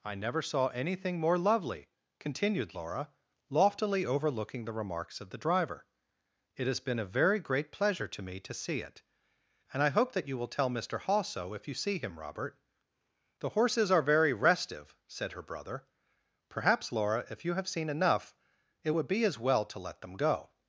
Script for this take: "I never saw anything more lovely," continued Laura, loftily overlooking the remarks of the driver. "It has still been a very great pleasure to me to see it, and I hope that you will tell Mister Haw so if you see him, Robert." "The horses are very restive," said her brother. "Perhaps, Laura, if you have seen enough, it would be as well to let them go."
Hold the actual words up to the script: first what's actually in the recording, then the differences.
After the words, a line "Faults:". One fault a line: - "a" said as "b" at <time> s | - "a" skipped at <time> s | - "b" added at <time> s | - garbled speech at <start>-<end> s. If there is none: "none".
"I never saw anything more lovely," continued Laura, loftily overlooking the remarks of the driver. "It has been a very great pleasure to me to see it, and I hope that you will tell Mister Haw so if you see him, Robert." "The horses are very restive," said her brother. "Perhaps, Laura, if you have seen enough, it would be as well to let them go."
Faults:
- "still" skipped at 6.8 s